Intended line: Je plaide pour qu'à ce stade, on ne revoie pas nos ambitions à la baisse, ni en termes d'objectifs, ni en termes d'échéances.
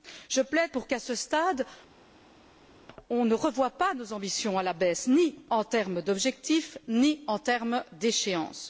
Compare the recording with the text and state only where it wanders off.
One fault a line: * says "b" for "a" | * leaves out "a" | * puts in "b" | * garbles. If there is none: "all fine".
all fine